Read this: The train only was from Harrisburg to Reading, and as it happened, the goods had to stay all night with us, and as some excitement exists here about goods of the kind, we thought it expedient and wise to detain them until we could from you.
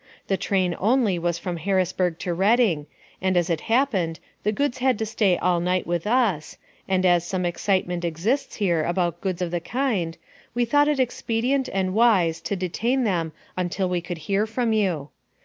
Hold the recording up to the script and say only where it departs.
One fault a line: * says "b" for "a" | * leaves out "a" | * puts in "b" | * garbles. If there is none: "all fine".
* puts in "hear"